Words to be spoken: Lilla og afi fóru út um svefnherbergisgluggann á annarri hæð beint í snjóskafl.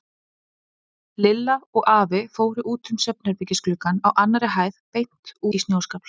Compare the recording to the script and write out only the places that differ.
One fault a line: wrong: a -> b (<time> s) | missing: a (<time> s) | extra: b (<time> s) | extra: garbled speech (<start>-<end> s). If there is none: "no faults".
no faults